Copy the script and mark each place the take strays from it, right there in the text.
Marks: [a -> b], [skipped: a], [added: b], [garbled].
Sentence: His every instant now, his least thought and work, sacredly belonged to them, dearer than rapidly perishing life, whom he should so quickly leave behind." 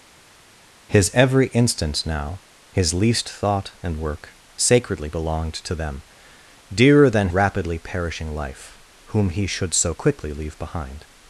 His every instant now, his least thought and work, sacredly belonged to them, dearer than rapidly perishing life, whom he should so quickly leave behind."